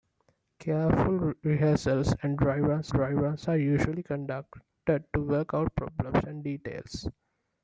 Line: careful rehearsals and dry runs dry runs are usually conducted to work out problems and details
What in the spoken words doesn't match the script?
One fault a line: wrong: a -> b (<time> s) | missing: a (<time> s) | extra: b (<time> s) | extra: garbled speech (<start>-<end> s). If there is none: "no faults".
no faults